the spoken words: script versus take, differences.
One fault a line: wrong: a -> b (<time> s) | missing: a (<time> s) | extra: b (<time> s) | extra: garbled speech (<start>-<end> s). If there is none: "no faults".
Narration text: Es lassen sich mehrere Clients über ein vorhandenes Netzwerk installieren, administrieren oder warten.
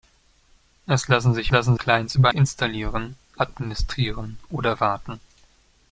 wrong: mehrere -> lassen (1.5 s)
missing: ein vorhandenes Netzwerk (2.3 s)